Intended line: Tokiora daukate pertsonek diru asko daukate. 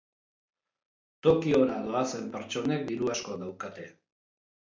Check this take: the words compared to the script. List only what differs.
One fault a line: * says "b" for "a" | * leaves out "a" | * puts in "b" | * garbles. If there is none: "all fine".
* says "doazen" for "daukate"